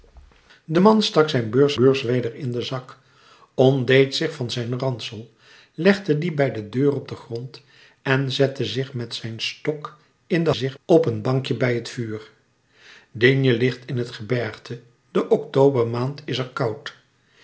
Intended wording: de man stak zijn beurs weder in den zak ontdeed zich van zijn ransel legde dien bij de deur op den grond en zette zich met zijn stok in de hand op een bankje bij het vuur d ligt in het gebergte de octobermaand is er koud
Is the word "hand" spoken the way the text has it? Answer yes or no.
no